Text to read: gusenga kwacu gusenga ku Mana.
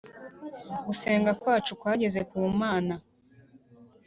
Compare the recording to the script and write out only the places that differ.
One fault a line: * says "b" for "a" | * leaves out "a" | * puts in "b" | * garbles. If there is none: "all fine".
* says "kwageze" for "gusenga"